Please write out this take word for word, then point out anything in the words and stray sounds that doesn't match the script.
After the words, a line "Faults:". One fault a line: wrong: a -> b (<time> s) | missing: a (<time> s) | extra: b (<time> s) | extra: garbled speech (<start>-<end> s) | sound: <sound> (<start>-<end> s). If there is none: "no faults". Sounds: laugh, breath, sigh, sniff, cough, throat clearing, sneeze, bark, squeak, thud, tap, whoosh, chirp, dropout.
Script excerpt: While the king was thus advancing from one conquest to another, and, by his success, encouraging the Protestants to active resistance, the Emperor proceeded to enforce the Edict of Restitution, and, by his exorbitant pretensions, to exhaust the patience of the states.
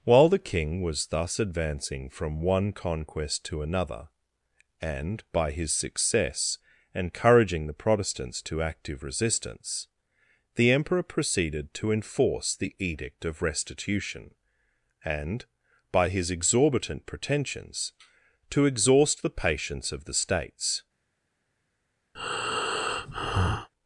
While the king was thus advancing from one conquest to another, and, by his success, encouraging the Protestants to active resistance, the Emperor proceeded to enforce the Edict of Restitution, and, by his exorbitant pretensions, to exhaust the patience of the states.
Faults:
sound: breath (22.1-23.7 s)